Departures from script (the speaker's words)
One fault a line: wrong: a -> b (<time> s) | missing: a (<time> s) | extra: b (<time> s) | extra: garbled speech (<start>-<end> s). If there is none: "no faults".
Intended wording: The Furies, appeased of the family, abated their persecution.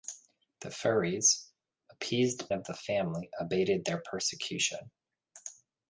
no faults